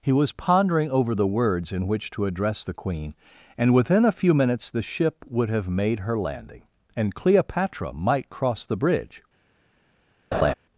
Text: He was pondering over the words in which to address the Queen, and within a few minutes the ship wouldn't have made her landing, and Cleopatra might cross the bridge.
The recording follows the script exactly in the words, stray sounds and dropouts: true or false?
false